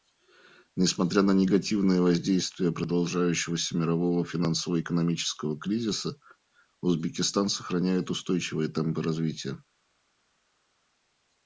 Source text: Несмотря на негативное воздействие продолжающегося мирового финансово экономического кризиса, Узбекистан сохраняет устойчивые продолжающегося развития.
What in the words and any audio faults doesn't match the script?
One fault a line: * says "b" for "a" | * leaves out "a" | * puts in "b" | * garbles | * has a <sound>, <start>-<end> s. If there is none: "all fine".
* says "темпы" for "продолжающегося"